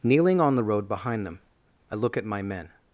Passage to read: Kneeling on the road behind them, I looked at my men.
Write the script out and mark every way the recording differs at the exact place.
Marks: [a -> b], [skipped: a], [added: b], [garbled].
Kneeling on the road behind them, I [looked -> look] at my men.